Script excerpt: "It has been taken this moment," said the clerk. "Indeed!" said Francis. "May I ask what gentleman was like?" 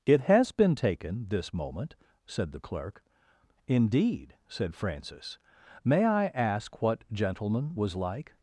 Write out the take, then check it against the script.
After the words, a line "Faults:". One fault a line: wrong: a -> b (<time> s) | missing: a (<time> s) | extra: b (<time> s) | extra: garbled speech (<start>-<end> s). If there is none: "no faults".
"It has been taken this moment," said the clerk. "Indeed!" said Francis. "May I ask what gentleman was like?"
Faults:
no faults